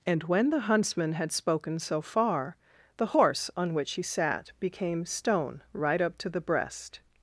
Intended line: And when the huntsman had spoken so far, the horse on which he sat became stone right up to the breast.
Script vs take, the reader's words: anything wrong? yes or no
no